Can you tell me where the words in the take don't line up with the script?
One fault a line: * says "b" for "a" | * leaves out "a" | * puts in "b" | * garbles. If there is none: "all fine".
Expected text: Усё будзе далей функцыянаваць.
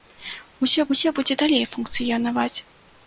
* puts in "усё"